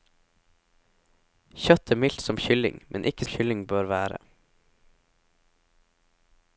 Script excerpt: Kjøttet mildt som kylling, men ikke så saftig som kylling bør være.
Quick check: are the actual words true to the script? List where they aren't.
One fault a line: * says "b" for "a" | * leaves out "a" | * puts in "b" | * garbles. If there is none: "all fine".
* leaves out "så saftig som"